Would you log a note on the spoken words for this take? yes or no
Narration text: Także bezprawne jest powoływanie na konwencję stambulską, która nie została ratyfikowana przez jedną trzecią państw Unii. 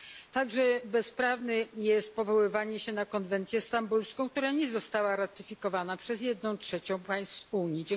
yes